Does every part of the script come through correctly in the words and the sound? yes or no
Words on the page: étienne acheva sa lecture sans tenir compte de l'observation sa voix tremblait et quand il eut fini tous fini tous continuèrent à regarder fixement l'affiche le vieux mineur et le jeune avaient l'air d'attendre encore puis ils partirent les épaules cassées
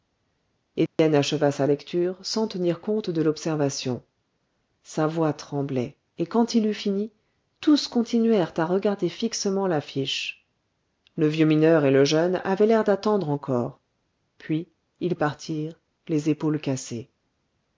no